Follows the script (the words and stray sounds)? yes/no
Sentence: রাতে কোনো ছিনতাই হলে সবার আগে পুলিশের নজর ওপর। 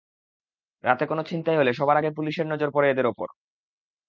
no